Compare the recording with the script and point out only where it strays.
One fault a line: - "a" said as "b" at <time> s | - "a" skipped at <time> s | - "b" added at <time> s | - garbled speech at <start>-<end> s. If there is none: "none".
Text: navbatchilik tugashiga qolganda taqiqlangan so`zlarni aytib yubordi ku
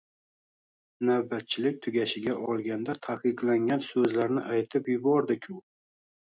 none